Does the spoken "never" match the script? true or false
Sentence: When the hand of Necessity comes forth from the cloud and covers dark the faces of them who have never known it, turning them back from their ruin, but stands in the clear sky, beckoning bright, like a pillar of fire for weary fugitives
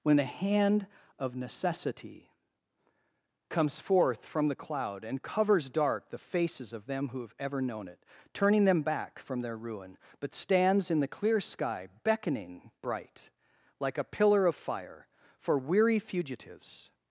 false